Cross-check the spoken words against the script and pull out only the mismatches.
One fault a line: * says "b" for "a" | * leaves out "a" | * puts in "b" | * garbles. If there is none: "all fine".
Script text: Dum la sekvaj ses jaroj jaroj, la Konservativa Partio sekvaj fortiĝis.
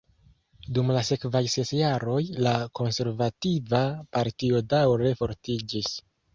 * leaves out "jaroj"
* says "daŭre" for "sekvaj"